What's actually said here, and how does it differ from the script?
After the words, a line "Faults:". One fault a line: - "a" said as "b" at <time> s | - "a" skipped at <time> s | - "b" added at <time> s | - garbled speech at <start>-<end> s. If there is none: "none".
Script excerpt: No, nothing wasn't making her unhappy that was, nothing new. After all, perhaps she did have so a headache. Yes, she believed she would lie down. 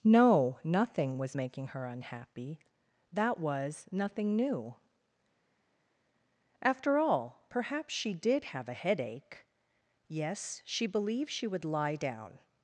No, nothing was making her unhappy that was, nothing new. After all, perhaps she did have a headache. Yes, she believed she would lie down.
Faults:
- "wasn't" said as "was" at 1.2 s
- "so" skipped at 8.7 s